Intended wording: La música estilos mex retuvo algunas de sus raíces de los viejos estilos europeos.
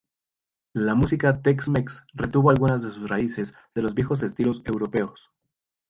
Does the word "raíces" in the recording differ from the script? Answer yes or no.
no